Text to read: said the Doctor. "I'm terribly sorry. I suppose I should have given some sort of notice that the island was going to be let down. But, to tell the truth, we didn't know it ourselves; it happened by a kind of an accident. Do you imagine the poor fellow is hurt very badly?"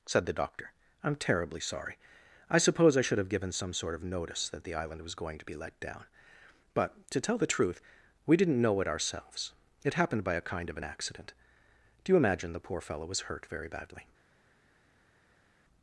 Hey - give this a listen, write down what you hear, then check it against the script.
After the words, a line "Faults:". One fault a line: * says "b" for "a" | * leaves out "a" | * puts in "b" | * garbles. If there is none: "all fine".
said the Doctor. "I'm terribly sorry. I suppose I should have given some sort of notice that the island was going to be let down. But, to tell the truth, we didn't know it ourselves; it happened by a kind of an accident. Do you imagine the poor fellow was hurt very badly?"
Faults:
* says "was" for "is"